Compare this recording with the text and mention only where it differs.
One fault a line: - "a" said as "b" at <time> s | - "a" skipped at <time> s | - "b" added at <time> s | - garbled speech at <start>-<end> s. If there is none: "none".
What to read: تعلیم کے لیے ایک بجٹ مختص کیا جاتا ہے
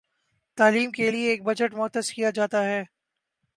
none